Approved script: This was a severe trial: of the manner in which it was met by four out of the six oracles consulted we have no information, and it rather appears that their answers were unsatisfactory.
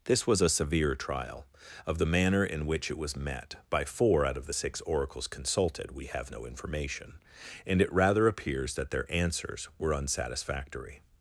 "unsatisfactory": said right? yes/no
yes